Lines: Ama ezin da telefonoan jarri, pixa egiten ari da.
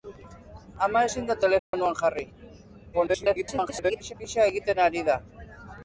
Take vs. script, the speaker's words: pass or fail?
fail